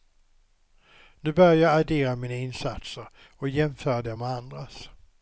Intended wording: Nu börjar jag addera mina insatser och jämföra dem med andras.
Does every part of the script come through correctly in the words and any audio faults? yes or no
yes